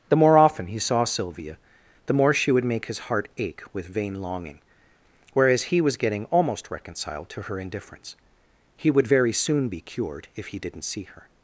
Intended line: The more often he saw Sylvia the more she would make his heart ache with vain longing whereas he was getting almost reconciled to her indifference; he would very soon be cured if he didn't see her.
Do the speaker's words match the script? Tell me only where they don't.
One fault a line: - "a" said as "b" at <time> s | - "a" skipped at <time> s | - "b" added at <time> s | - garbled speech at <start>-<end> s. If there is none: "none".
none